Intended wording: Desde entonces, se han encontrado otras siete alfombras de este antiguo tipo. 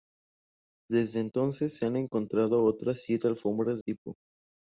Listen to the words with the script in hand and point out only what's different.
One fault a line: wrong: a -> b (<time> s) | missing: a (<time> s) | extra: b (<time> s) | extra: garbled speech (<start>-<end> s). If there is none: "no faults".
missing: de este antiguo (3.8 s)